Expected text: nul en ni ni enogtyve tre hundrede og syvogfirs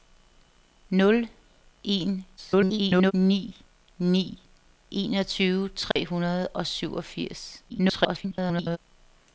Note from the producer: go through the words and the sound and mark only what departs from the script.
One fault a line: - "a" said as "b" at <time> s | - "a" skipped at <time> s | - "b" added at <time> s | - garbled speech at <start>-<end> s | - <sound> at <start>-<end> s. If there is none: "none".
- garbled speech at 2.4-3.1 s
- dropout at 5.9-6.0 s
- garbled speech at 7.7-8.8 s